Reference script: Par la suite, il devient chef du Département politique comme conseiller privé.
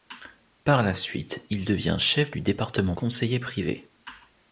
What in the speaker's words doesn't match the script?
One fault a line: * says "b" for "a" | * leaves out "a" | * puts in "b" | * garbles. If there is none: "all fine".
* leaves out "politique comme"